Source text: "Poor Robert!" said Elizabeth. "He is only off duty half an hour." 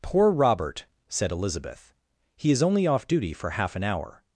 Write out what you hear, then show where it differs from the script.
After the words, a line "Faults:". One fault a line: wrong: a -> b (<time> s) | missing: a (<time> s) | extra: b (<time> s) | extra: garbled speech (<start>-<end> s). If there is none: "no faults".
"Poor Robert!" said Elizabeth. "He is only off duty for half an hour."
Faults:
extra: for (3.3 s)